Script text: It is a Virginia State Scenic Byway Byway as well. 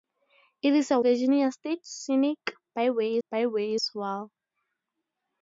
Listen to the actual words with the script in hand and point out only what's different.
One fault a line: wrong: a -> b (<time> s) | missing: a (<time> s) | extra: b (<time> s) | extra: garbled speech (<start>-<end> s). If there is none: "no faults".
no faults